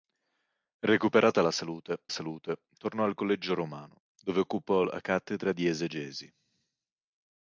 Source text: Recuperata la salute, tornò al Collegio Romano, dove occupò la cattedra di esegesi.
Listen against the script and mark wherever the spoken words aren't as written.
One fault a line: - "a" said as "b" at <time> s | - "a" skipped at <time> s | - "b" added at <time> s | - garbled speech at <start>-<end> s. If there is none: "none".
- "salute" added at 2.1 s